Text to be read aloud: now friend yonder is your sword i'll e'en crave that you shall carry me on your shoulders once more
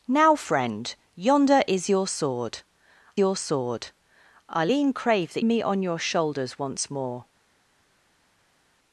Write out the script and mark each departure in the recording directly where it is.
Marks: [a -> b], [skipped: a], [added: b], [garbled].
now friend yonder is your sword [added: your sword] i'll e'en crave that [skipped: you shall carry] me on your shoulders once more